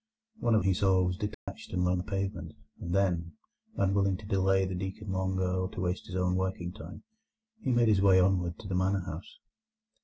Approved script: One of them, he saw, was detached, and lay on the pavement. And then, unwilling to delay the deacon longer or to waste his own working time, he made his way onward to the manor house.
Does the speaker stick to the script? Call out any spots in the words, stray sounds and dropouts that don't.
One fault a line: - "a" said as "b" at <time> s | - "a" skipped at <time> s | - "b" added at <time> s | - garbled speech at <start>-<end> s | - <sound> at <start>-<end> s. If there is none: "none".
- "them" skipped at 0.6 s
- dropout at 1.3-1.5 s
- "on" skipped at 1.9 s